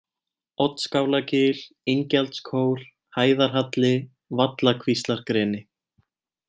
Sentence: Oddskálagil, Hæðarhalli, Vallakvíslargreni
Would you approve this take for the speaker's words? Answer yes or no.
no